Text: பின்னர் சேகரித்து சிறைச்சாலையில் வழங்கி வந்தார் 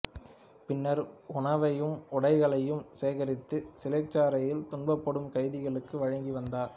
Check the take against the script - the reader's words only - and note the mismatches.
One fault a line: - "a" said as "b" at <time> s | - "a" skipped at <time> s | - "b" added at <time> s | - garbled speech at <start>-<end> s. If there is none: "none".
- "உணவையும் உடைகளையும்" added at 1.3 s
- "துன்பப்படும் கைதிகளுக்கு" added at 4.7 s